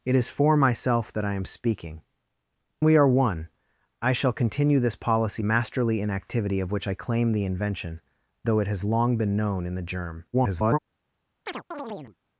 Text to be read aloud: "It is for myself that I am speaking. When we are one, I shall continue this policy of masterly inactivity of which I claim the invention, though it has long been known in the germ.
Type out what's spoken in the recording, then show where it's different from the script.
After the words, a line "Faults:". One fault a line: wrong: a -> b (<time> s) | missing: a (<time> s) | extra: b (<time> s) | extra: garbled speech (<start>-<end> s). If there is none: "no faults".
"It is for myself that I am speaking. We are one, I shall continue this policy masterly inactivity of which I claim the invention, though it has long been known in the germ. [garbled]
Faults:
missing: When (2.0 s)
missing: of (5.4 s)
extra: garbled speech (10.3-10.8 s)